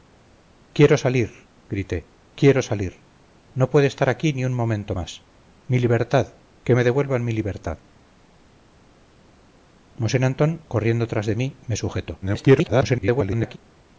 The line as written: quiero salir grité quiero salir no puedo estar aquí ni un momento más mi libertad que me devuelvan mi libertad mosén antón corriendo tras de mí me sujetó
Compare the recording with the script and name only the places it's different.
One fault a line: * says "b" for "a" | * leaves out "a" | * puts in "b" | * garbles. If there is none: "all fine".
* garbles